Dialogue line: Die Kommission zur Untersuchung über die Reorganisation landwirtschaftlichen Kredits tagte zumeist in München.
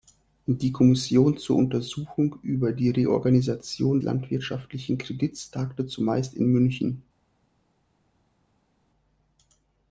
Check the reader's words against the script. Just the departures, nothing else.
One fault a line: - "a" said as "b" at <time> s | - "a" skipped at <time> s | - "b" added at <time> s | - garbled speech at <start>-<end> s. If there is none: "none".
none